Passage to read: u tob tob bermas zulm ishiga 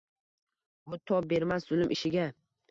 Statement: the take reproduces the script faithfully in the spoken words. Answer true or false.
false